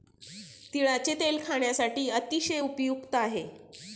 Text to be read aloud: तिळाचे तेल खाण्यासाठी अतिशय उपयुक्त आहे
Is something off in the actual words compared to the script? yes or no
no